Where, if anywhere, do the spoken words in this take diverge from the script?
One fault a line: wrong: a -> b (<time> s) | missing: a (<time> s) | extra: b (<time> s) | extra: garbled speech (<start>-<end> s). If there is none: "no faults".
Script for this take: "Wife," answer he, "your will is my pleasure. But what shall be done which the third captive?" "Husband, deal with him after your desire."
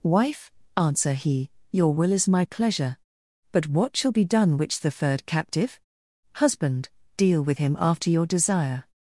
no faults